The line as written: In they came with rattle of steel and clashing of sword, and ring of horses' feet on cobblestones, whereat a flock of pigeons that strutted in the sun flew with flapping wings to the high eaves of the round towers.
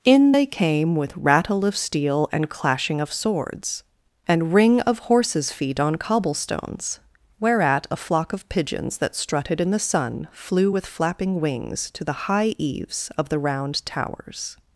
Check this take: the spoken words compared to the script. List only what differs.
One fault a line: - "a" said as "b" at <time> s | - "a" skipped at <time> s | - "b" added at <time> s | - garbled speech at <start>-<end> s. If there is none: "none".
- "sword" said as "swords" at 3.1 s